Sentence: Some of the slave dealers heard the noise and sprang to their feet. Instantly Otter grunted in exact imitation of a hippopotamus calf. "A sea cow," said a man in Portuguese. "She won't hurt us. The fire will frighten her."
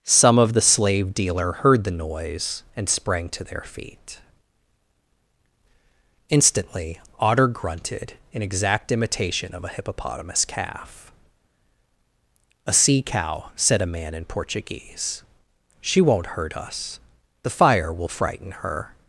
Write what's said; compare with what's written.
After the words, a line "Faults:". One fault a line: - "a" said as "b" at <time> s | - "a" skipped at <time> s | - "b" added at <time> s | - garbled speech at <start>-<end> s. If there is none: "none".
Some of the slave dealer heard the noise and sprang to their feet. Instantly Otter grunted in exact imitation of a hippopotamus calf. "A sea cow," said a man in Portuguese. "She won't hurt us. The fire will frighten her."
Faults:
- "dealers" said as "dealer" at 1.1 s